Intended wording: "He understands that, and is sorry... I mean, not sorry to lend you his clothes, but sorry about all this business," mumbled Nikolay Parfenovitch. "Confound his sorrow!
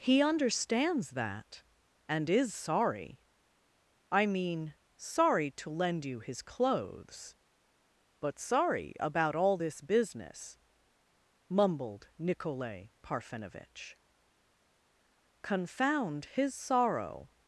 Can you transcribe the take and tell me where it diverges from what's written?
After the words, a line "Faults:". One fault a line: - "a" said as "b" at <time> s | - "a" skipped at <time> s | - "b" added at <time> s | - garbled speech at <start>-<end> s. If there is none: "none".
"He understands that, and is sorry... I mean, sorry to lend you his clothes, but sorry about all this business," mumbled Nikolay Parfenovitch. "Confound his sorrow!
Faults:
- "not" skipped at 4.7 s